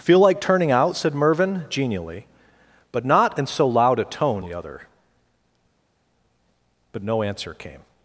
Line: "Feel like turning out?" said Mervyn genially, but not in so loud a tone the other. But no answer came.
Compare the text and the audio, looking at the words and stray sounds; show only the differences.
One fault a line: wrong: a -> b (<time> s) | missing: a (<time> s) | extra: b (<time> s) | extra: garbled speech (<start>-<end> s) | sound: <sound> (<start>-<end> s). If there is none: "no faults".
no faults